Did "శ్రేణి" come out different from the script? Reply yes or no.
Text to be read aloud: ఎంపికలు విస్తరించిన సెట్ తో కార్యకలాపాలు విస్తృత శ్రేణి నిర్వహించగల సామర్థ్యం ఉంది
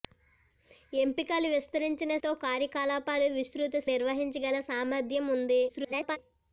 yes